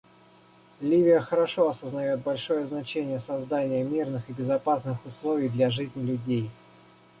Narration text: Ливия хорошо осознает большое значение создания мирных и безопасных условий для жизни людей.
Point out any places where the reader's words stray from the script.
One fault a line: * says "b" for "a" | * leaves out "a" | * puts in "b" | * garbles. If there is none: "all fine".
all fine